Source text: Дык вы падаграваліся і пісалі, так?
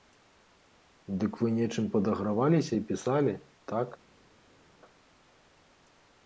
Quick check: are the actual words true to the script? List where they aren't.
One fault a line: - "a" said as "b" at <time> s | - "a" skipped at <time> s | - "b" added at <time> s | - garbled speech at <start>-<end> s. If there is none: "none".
- "нечым" added at 1.6 s